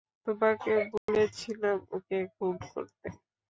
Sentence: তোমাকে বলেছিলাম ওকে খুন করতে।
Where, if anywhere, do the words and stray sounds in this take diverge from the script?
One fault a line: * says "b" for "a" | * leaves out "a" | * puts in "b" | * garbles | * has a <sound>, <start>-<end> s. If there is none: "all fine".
* has a dropout, 1.0-1.1 s